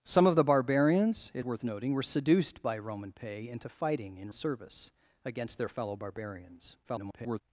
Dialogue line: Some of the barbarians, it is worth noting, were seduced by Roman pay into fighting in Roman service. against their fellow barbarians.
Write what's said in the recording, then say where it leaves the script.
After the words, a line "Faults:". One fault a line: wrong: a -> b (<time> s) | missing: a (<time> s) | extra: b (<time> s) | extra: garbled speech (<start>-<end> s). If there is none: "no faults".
Some of the barbarians, it worth noting, were seduced by Roman pay into fighting in Service. against their fellow barbarians. [garbled]
Faults:
missing: is (1.4 s)
missing: Roman (4.3 s)
extra: garbled speech (6.8-7.4 s)